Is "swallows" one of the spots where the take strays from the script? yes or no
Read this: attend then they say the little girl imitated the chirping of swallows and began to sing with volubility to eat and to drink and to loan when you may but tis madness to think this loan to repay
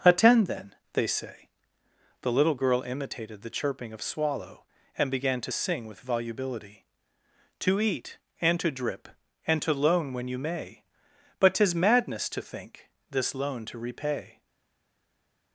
yes